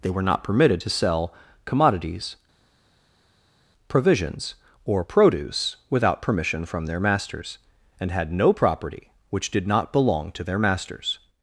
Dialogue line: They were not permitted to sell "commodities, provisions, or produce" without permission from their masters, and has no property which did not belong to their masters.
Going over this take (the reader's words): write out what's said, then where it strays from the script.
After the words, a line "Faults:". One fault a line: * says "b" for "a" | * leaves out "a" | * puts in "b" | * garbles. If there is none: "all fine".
They were not permitted to sell "commodities, provisions, or produce" without permission from their masters, and had no property which did not belong to their masters.
Faults:
* says "had" for "has"